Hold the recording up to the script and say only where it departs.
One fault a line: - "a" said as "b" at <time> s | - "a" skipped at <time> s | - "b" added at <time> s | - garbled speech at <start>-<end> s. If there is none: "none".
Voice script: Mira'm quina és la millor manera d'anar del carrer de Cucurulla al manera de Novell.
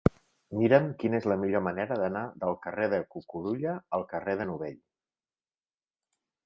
- "manera" said as "carrer" at 4.2 s